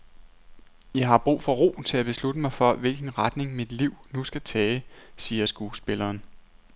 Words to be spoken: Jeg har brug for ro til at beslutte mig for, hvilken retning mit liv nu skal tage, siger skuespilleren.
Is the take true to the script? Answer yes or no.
yes